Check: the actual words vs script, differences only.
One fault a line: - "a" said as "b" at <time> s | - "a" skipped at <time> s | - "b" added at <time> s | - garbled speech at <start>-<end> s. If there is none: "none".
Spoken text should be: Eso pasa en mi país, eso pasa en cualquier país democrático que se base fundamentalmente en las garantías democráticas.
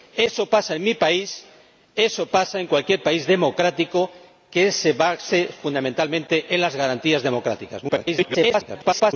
- garbled speech at 7.9-9.1 s